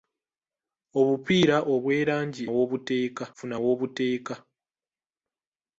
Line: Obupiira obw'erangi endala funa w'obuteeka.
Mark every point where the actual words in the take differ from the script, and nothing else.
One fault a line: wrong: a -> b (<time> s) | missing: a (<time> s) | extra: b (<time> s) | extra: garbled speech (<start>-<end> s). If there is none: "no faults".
wrong: endala -> w'obuteeka (2.5 s)